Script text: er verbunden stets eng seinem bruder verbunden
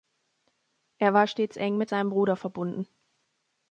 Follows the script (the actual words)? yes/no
no